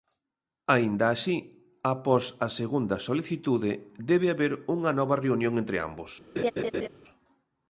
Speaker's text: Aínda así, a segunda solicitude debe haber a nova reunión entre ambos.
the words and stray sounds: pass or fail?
fail